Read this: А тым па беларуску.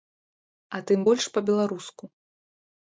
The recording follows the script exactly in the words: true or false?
false